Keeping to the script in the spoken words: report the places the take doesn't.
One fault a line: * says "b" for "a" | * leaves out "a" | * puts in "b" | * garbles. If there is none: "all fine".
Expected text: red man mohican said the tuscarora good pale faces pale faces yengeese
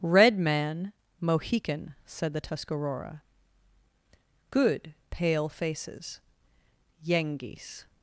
* leaves out "pale faces"